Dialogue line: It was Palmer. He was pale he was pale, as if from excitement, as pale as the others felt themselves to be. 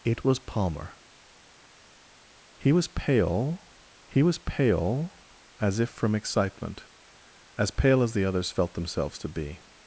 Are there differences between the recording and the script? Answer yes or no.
no